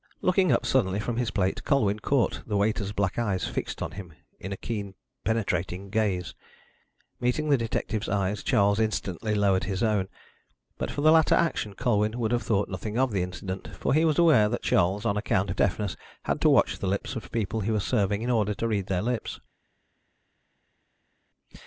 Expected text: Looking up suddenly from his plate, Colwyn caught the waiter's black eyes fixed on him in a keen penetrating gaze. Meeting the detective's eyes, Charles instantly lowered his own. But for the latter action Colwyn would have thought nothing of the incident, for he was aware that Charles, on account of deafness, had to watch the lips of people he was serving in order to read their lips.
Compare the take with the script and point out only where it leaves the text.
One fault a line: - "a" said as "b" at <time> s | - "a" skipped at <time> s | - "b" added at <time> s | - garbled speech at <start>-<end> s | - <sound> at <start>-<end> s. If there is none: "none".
none